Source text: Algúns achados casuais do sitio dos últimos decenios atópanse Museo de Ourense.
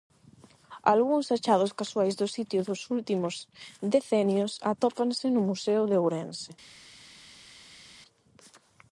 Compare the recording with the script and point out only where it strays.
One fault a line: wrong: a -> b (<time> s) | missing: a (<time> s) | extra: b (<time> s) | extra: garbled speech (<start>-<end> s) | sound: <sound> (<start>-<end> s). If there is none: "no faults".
extra: no (5.3 s)